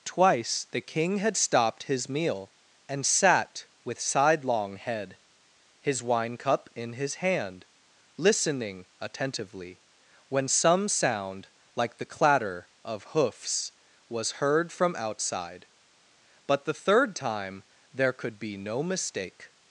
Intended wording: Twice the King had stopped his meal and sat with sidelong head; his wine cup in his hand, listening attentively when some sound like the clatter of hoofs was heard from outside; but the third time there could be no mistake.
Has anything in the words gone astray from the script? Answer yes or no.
no